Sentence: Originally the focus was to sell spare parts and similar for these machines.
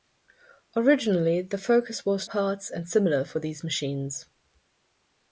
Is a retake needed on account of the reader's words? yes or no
yes